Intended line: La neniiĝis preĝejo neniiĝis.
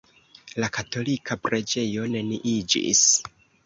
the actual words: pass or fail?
fail